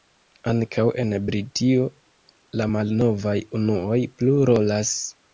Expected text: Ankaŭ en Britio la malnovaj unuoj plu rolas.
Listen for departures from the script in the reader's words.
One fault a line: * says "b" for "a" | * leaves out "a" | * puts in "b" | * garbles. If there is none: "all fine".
all fine